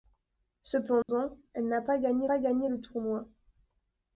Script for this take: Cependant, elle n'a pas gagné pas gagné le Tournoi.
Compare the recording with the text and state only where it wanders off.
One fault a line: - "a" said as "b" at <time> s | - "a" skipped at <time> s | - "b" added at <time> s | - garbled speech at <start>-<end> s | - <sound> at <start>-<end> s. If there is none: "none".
- dropout at 1.0-1.1 s